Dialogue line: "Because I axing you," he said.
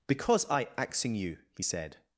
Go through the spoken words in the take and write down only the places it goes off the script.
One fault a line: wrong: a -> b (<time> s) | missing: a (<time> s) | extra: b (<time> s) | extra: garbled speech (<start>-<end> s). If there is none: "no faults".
no faults